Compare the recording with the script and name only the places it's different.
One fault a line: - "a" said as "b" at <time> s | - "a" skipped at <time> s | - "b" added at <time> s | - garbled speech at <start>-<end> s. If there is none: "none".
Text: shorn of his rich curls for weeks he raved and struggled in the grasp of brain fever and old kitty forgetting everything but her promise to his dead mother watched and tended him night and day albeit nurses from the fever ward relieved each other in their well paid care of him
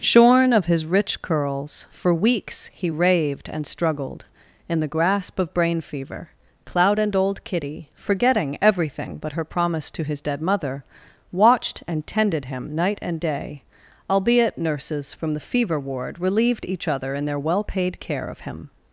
- "cloud" added at 6.6 s